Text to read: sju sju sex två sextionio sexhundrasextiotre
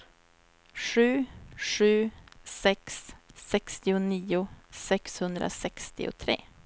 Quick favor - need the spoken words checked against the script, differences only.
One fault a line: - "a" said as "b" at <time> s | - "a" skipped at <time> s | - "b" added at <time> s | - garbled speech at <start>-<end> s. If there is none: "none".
- "två" skipped at 3.1 s